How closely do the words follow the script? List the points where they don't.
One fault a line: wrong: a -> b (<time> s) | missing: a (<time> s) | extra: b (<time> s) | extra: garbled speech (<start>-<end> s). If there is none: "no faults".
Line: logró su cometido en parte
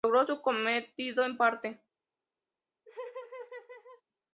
no faults